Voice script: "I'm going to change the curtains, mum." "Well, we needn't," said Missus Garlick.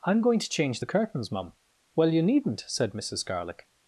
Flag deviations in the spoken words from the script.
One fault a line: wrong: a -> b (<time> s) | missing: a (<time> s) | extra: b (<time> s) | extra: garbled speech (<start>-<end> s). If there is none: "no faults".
wrong: we -> you (2.1 s)